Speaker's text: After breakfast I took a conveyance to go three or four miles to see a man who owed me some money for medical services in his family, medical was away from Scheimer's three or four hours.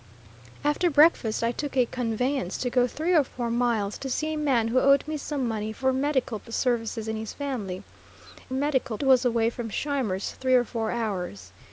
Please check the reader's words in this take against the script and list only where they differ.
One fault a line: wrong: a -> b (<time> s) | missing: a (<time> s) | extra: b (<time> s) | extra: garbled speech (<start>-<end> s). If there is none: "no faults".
no faults